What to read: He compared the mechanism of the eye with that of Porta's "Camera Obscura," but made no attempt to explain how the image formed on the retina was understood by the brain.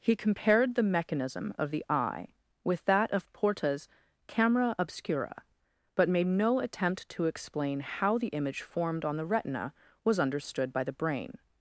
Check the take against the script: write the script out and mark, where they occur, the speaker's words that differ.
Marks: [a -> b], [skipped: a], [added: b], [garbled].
He compared the mechanism of the eye with that of Porta's "Camera Obscura," but made no attempt to explain how the image formed on the retina was understood by the brain.